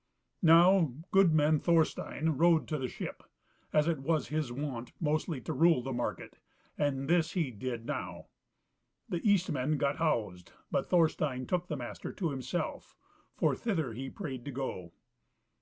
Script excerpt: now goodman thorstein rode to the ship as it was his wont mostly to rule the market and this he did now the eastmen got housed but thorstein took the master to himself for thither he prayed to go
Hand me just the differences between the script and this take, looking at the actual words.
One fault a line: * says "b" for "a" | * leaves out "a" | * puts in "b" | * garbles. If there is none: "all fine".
all fine